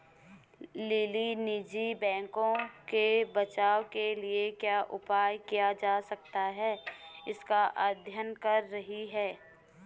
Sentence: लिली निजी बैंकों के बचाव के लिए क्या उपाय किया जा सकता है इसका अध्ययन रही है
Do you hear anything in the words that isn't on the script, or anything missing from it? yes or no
yes